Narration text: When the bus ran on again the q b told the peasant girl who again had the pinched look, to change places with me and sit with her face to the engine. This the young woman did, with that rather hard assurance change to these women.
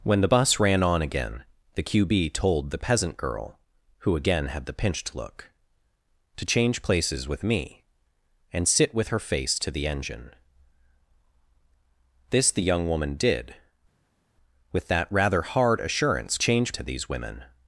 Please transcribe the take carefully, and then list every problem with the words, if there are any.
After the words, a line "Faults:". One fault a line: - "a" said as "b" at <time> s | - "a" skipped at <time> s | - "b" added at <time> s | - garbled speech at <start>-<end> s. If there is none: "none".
When the bus ran on again the q b told the peasant girl who again had the pinched look, to change places with me and sit with her face to the engine. This the young woman did, with that rather hard assurance change to these women.
Faults:
none